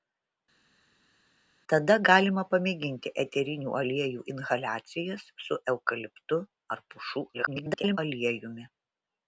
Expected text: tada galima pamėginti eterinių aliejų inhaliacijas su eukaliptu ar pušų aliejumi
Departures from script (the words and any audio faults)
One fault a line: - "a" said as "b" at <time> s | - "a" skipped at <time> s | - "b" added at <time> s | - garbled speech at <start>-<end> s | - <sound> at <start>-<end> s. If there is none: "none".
- garbled speech at 7.3-8.0 s